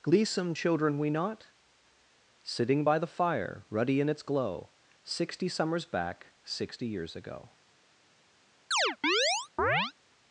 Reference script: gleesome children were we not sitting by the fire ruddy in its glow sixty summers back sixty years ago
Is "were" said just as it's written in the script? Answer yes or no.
no